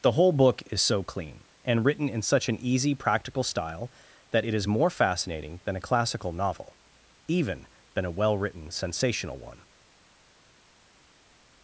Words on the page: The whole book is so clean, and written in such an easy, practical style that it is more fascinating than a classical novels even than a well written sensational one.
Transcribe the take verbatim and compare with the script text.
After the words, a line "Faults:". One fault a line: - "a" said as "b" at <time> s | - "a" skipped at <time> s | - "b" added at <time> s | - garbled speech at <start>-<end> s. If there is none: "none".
The whole book is so clean, and written in such an easy, practical style that it is more fascinating than a classical novel even than a well written sensational one.
Faults:
- "novels" said as "novel" at 6.3 s